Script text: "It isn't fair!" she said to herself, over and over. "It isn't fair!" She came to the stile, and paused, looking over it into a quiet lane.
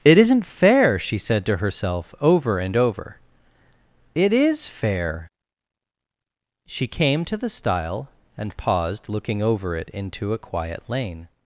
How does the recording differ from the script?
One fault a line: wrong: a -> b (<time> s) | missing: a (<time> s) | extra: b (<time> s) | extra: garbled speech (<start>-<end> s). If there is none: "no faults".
wrong: isn't -> is (4.3 s)